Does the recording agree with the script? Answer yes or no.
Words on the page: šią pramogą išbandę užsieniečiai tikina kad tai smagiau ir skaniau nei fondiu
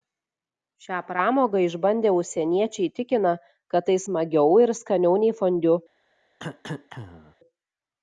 yes